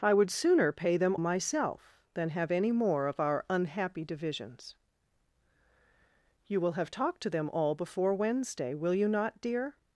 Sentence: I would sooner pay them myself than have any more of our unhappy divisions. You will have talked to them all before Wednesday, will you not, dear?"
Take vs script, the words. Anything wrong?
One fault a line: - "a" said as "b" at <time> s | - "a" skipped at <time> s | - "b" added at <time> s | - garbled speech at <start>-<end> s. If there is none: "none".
none